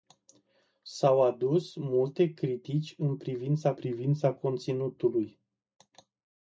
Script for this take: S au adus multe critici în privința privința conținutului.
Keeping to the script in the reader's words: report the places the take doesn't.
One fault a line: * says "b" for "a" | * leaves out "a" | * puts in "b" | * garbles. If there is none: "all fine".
all fine